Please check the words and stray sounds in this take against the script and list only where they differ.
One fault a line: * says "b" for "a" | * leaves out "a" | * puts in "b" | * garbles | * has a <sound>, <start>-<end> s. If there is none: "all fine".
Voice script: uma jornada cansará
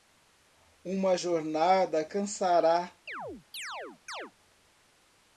* has a chirp, 3.1-4.3 s